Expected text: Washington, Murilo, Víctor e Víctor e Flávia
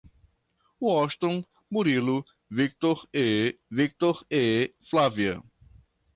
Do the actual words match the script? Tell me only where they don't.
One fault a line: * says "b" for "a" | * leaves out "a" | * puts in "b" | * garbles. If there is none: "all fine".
all fine